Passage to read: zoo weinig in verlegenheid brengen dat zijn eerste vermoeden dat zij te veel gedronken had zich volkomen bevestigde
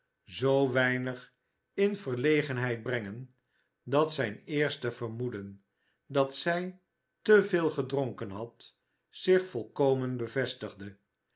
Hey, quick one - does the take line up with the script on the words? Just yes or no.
yes